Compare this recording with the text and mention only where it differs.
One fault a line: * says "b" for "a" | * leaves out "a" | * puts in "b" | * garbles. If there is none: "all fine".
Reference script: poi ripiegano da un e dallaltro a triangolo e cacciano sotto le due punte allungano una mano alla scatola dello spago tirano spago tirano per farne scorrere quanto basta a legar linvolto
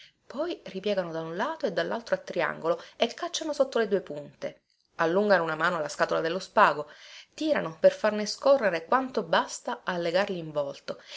* puts in "lato"
* leaves out "spago tirano"